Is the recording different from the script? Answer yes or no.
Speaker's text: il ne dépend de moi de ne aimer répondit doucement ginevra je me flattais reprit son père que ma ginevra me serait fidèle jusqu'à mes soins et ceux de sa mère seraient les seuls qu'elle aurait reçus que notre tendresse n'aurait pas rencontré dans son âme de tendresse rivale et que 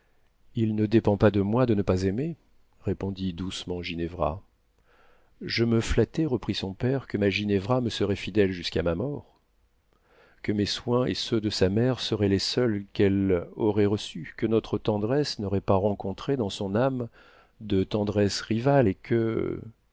yes